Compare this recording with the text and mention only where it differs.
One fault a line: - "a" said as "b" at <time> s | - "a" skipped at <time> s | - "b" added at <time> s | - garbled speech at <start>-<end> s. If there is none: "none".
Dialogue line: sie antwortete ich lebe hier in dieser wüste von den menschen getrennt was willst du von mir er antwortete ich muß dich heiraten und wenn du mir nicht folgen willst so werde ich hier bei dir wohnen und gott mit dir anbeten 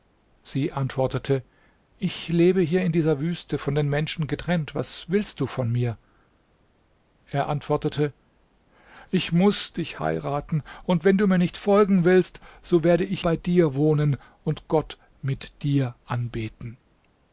- "hier" skipped at 13.2 s